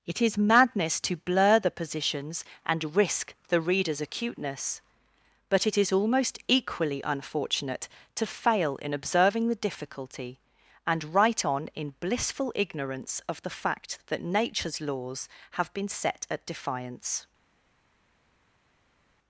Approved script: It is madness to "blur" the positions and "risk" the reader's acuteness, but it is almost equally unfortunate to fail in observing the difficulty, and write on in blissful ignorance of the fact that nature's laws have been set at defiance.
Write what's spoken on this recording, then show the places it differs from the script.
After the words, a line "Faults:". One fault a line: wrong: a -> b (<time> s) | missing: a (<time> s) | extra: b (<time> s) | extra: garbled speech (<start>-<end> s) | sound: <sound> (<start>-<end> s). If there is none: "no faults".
It is madness to "blur" the positions and "risk" the reader's acuteness, but it is almost equally unfortunate to fail in observing the difficulty, and write on in blissful ignorance of the fact that nature's laws have been set at defiance.
Faults:
no faults